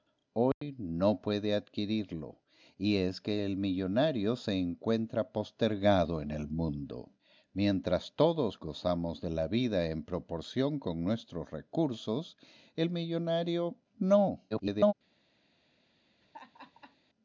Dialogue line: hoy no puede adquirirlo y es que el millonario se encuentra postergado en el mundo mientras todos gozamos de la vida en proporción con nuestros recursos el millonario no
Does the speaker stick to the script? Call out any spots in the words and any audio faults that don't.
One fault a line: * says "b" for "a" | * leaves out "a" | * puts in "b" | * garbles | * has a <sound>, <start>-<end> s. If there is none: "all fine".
* has a dropout, 0.5-0.6 s
* garbles
* has a laugh, 16.2-17.0 s